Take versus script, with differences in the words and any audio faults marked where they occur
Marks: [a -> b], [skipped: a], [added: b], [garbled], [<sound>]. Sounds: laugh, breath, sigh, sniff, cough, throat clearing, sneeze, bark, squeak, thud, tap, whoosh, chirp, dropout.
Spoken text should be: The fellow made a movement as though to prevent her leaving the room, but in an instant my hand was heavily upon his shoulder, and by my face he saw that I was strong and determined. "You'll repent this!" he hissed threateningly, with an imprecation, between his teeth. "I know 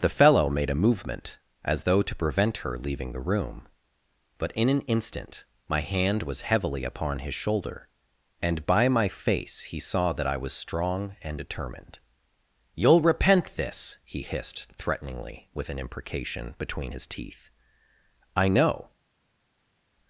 The fellow made a movement as though to prevent her leaving the room, but in an instant my hand was heavily upon his shoulder, and by my face he saw that I was strong and determined. "You'll repent this!" he hissed threateningly, with an imprecation, between his teeth. "I know